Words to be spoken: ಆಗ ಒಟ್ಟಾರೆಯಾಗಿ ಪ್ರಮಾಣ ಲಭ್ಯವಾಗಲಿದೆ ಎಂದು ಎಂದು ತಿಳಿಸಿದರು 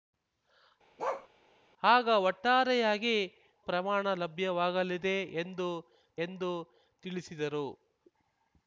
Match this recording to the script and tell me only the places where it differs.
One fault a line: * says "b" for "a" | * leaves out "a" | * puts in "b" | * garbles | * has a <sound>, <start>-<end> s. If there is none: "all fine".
* has a bark, 1.0-1.3 s